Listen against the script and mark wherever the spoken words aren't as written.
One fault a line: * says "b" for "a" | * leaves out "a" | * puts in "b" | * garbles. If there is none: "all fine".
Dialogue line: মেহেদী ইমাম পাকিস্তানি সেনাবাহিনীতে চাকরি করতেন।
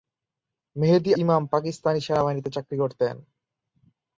all fine